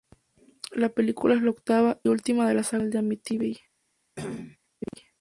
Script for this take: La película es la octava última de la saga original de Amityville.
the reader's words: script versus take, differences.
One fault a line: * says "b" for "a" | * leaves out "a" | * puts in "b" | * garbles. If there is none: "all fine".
all fine